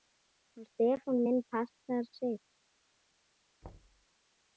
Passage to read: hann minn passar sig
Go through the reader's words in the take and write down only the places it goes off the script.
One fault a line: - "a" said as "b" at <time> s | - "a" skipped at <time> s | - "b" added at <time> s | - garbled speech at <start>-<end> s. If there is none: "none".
- "stefán" added at 0.7 s